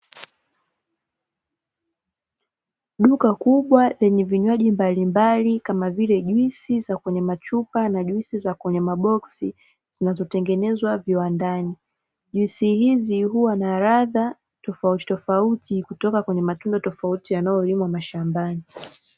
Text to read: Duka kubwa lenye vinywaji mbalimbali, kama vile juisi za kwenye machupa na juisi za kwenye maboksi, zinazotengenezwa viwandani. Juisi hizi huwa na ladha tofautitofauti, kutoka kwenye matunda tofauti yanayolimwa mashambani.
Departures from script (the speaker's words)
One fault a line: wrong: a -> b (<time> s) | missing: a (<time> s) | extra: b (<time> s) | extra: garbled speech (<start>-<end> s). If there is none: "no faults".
no faults